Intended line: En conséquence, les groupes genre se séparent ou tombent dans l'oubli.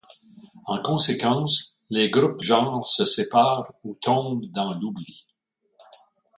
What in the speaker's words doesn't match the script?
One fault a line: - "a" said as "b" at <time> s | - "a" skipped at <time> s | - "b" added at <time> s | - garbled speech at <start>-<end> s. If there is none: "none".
none